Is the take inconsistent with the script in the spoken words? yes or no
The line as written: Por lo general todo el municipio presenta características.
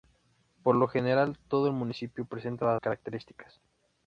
no